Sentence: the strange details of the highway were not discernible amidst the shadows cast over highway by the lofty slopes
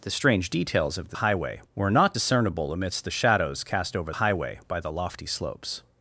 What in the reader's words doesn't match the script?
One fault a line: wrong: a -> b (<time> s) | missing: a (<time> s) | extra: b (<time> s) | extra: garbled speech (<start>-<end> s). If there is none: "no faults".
no faults